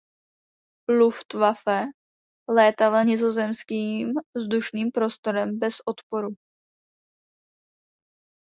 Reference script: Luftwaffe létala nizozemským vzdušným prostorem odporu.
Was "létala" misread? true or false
false